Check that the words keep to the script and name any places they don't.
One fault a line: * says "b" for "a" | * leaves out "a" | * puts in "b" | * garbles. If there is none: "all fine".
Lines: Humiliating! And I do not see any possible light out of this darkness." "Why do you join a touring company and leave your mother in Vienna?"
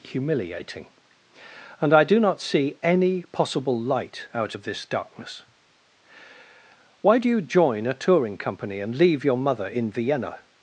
all fine